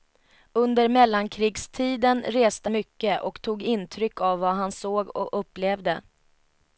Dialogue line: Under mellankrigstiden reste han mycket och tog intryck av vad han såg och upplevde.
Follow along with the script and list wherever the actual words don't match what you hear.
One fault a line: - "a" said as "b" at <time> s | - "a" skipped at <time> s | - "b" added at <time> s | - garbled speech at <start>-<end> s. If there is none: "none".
- "han" skipped at 2.7 s